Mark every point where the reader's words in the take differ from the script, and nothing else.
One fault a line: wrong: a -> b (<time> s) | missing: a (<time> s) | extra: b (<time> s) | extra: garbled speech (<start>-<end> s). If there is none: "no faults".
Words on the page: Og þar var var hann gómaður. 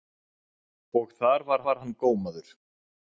no faults